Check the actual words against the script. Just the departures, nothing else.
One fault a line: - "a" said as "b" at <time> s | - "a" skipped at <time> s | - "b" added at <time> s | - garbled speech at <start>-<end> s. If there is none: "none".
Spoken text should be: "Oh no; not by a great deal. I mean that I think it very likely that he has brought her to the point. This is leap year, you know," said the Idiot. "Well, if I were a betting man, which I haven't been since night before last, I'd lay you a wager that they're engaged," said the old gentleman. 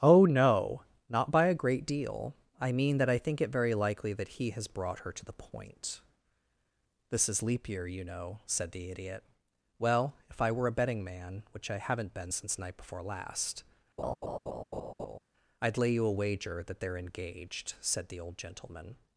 none